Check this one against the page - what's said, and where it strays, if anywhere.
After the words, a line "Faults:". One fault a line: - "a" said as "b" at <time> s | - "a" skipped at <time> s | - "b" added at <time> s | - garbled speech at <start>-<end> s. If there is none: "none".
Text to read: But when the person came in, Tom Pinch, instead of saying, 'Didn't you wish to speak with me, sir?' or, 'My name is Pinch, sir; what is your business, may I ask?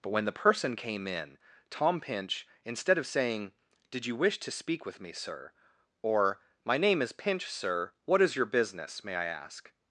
But when the person came in, Tom Pinch, instead of saying, 'Did you wish to speak with me, sir?' or, 'My name is Pinch, sir; what is your business, may I ask?
Faults:
- "Didn't" said as "Did" at 3.9 s